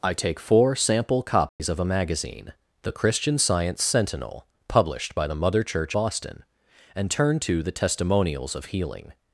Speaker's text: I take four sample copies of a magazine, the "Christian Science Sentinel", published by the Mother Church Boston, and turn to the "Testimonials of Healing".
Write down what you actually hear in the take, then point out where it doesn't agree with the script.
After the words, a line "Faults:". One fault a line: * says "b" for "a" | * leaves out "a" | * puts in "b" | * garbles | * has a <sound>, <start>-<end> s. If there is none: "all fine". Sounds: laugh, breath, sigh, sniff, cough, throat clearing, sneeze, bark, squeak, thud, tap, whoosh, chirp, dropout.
I take four sample copies of a magazine, the "Christian Science Sentinel", published by the Mother Church Boston, and turn to the "Testimonials of Healing".
Faults:
* has a dropout, 1.5-1.6 s